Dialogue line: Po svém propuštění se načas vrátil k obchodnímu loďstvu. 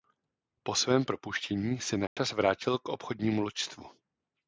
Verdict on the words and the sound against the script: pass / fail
fail